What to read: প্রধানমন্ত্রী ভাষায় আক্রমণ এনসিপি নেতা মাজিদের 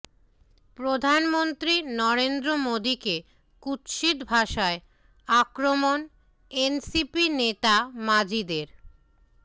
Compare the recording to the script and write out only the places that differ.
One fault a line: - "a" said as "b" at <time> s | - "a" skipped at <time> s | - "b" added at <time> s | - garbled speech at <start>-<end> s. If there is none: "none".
- "নরেন্দ্র মোদীকে কুৎসিত" added at 2.0 s